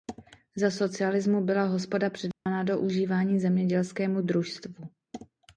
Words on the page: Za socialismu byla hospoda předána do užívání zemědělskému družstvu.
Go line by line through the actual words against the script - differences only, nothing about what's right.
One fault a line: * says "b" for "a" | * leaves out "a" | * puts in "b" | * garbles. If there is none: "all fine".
all fine